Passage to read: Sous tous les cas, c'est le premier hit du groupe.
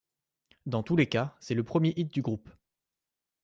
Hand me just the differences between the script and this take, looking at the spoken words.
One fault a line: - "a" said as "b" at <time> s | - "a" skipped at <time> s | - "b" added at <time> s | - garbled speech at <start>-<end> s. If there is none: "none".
- "Sous" said as "Dans" at 0.7 s